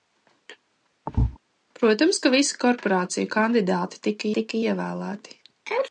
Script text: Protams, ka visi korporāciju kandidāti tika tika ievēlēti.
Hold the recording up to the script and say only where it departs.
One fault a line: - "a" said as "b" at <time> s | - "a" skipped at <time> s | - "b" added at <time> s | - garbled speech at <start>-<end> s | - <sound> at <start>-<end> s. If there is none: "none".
- thud at 1.1-1.4 s